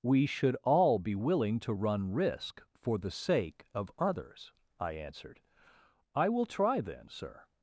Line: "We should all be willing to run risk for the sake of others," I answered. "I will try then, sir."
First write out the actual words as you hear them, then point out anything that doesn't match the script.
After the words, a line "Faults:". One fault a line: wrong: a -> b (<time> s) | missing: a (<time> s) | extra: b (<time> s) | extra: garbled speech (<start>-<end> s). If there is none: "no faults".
"We should all be willing to run risk for the sake of others," I answered. "I will try then, sir."
Faults:
no faults